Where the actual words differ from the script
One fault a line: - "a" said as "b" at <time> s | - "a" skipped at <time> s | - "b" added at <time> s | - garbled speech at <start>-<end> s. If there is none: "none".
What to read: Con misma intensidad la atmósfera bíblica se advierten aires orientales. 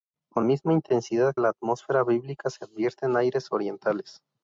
none